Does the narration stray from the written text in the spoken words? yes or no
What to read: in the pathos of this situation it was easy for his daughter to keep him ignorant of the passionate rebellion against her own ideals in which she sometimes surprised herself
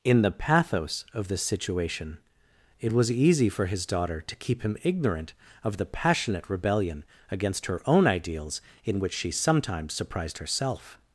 no